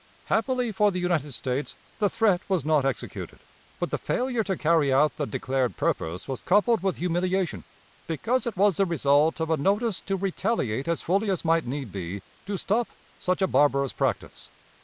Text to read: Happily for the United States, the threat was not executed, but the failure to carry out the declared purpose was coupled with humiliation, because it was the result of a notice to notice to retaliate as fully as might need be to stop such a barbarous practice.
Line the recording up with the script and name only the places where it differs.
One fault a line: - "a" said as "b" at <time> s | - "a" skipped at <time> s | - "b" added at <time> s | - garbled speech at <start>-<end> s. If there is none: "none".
- "notice to" skipped at 10.2 s